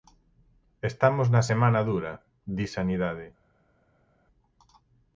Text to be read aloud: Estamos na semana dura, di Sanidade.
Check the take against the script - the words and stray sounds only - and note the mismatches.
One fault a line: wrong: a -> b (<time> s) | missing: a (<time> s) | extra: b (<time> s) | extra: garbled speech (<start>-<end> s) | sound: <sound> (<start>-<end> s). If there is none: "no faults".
no faults